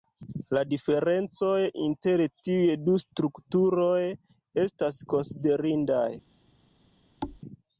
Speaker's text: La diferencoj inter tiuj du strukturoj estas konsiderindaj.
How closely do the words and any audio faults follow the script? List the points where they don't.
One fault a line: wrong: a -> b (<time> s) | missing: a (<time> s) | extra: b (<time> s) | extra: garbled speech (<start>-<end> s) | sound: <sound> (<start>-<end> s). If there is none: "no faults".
sound: thud (7.2-7.4 s)